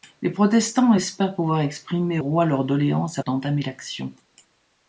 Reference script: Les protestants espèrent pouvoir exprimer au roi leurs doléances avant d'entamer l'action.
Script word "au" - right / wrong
wrong